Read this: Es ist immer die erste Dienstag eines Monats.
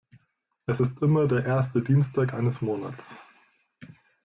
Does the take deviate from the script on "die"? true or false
true